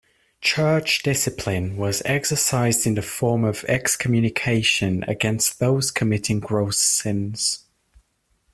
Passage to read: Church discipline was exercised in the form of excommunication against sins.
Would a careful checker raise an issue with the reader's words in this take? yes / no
yes